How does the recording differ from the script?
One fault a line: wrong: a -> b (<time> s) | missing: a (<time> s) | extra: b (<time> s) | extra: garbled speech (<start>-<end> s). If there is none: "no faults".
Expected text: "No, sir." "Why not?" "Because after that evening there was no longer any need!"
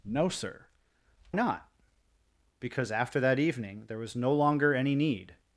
missing: Why (0.7 s)